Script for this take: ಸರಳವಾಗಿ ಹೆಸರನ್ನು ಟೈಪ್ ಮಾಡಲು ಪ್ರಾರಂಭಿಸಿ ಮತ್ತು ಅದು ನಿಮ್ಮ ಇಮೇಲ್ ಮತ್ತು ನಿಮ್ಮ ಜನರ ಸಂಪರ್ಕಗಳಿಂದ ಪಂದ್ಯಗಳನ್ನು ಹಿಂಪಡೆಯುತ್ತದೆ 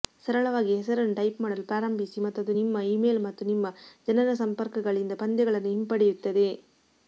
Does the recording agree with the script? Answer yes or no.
yes